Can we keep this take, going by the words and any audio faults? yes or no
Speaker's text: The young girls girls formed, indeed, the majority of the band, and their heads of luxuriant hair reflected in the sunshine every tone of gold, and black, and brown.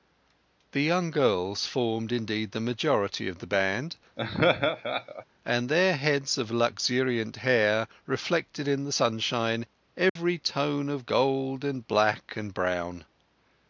no